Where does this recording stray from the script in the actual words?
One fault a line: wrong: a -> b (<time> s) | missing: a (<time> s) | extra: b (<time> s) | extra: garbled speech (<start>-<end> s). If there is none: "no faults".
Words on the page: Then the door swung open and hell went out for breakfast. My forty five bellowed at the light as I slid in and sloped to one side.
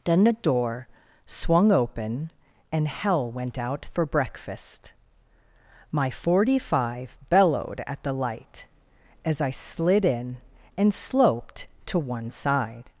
no faults